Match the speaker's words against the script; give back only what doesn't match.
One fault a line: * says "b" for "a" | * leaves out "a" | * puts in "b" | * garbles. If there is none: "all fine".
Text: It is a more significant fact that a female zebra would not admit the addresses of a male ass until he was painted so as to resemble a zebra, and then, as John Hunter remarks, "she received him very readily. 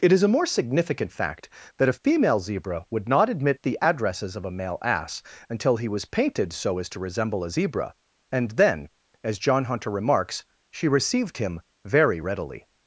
all fine